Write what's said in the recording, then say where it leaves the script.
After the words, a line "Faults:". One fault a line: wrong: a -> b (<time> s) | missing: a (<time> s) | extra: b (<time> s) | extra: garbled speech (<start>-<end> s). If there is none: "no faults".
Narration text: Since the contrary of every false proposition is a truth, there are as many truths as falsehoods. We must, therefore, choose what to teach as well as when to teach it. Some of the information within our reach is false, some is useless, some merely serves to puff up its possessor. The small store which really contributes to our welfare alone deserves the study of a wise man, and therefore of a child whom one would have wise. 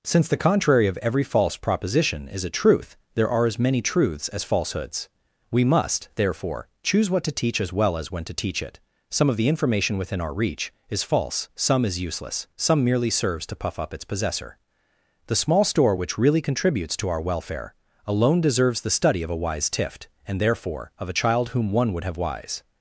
Since the contrary of every false proposition is a truth, there are as many truths as falsehoods. We must, therefore, choose what to teach as well as when to teach it. Some of the information within our reach is false, some is useless, some merely serves to puff up its possessor. The small store which really contributes to our welfare alone deserves the study of a wise tift, and therefore of a child whom one would have wise.
Faults:
wrong: man -> tift (19.7 s)